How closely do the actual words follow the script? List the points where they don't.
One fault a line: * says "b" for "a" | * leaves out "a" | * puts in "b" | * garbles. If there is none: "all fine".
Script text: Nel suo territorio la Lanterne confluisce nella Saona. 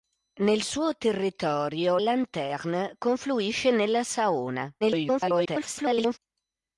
* leaves out "la"
* garbles